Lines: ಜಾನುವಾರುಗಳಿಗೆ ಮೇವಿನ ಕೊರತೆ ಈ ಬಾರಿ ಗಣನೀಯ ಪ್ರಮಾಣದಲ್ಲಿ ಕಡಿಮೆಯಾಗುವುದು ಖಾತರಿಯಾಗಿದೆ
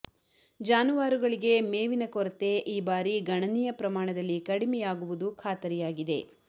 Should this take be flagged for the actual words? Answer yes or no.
no